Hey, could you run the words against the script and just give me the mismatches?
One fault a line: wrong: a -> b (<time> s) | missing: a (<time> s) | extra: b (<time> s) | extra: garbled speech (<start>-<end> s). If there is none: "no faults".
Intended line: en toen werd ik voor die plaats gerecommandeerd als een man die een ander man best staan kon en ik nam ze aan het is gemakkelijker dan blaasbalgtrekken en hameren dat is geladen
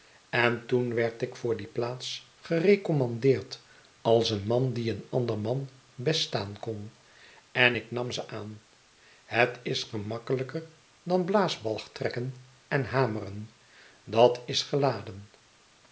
no faults